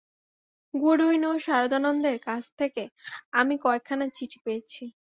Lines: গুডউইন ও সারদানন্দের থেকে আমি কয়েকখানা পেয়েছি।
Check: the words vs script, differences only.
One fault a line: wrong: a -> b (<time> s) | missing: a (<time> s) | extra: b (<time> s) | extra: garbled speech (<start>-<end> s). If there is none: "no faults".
extra: কাছ (2.3 s)
extra: চিঠি (4.2 s)